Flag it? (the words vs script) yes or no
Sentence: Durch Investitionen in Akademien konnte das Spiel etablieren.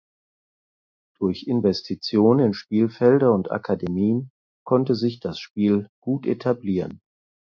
yes